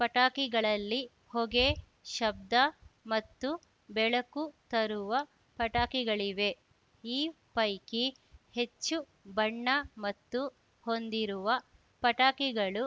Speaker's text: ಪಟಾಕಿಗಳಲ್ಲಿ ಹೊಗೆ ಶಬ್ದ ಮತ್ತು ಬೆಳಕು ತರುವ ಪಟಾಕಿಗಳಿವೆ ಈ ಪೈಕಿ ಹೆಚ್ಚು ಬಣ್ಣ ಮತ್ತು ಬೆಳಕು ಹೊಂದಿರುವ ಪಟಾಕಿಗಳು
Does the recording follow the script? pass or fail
fail